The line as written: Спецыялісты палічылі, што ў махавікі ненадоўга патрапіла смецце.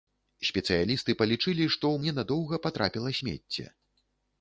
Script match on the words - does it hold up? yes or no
no